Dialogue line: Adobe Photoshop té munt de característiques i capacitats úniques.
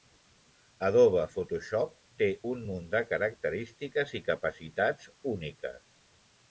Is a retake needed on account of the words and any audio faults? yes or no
yes